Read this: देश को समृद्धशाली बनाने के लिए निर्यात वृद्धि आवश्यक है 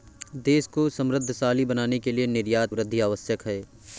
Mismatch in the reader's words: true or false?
false